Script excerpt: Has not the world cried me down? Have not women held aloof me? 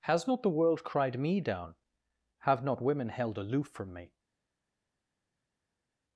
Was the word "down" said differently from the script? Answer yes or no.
no